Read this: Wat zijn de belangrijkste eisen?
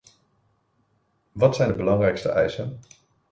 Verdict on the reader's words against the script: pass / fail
pass